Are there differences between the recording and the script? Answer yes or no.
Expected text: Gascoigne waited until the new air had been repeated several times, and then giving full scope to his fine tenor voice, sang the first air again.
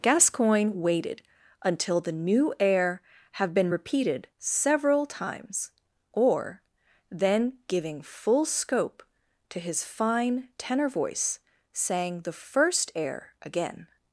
yes